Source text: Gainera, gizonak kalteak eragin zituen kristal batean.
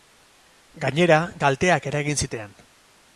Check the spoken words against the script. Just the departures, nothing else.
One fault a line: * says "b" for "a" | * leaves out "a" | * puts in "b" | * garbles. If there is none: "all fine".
* leaves out "gizonak"
* leaves out "zituen kristal"